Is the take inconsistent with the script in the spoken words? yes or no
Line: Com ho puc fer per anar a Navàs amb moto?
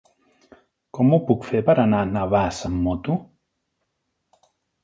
no